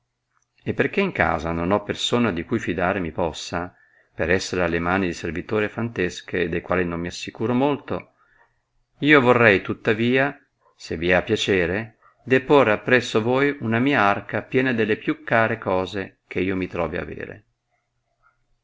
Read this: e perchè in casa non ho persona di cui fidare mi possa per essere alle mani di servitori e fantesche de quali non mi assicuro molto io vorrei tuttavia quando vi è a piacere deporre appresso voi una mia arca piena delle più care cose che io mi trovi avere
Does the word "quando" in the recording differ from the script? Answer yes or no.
yes